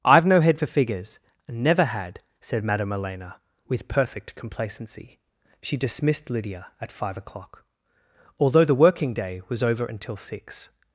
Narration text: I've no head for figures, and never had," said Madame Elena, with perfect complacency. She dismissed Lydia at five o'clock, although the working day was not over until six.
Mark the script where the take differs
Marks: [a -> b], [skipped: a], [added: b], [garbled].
I've no head for figures, and never had," said Madame Elena, with perfect complacency. She dismissed Lydia at five o'clock, although the working day was [skipped: not] over until six.